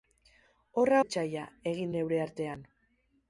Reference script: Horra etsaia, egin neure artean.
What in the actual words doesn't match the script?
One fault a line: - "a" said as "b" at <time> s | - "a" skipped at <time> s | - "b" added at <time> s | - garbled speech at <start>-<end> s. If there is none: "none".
none